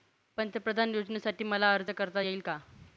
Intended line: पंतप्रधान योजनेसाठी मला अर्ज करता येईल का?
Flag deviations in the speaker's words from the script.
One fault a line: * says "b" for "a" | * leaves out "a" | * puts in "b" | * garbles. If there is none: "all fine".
all fine